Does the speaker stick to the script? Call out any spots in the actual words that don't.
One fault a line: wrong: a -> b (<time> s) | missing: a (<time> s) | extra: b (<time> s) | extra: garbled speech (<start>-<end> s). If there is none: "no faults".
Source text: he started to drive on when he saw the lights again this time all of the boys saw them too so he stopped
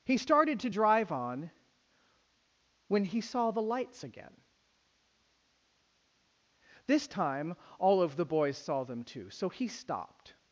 no faults